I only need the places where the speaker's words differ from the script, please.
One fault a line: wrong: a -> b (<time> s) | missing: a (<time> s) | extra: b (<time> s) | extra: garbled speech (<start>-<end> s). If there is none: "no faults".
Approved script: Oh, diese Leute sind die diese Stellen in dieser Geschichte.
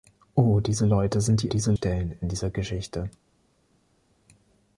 no faults